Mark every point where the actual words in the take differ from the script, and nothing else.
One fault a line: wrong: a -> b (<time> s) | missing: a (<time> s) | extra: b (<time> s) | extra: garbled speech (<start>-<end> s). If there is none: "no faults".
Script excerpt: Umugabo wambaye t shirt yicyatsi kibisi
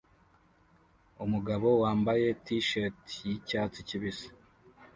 no faults